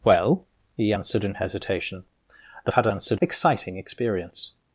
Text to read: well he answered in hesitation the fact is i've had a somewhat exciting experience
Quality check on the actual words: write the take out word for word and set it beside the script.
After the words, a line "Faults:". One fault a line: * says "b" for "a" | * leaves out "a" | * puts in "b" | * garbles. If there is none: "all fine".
well he answered in hesitation the had a answered exciting experience
Faults:
* leaves out "fact is i've"
* says "answered" for "somewhat"